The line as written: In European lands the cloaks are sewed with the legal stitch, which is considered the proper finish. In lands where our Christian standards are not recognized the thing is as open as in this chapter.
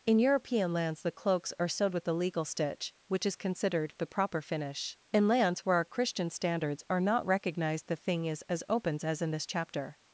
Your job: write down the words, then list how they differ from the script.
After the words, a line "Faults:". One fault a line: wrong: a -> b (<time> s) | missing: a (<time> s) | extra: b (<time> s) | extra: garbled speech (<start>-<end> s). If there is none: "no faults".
In European lands the cloaks are sewed with the legal stitch, which is considered the proper finish. In lands where our Christian standards are not recognized the thing is as opens as in this chapter.
Faults:
wrong: open -> opens (8.7 s)